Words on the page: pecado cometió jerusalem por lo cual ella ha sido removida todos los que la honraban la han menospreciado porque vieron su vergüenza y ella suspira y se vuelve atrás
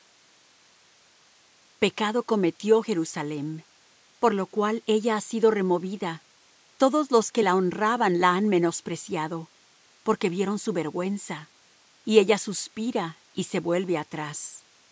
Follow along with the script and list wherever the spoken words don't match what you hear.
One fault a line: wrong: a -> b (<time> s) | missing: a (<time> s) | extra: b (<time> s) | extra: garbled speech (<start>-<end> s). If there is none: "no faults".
no faults